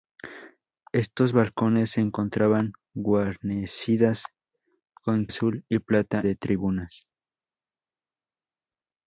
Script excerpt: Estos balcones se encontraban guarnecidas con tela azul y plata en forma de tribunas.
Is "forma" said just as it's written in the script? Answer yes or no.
no